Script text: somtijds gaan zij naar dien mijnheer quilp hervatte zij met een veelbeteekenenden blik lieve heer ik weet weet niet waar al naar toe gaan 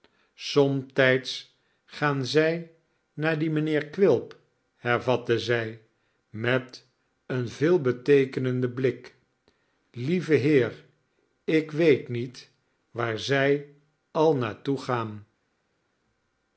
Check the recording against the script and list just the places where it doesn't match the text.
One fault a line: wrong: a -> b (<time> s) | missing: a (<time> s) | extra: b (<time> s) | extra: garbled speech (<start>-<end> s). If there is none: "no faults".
missing: weet (12.1 s)
extra: zij (13.2 s)